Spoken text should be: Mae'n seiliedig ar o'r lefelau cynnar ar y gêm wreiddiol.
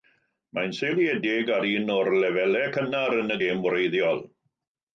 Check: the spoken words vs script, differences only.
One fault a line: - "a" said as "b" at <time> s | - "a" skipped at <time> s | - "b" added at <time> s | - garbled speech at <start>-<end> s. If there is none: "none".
- "un" added at 1.7 s
- "ar" said as "yn" at 3.2 s